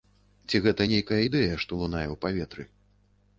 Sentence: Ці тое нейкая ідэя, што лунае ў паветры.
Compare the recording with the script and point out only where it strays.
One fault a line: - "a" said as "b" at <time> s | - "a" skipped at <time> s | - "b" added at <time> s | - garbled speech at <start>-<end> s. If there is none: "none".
- "тое" said as "гэта" at 0.7 s